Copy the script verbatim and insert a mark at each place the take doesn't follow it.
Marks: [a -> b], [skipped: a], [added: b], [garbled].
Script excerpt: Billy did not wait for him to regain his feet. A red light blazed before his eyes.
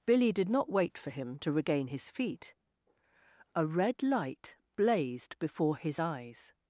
Billy did not wait for him to regain his feet. A red light blazed before his eyes.